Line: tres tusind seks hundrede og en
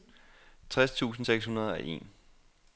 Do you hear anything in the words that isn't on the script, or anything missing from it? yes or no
no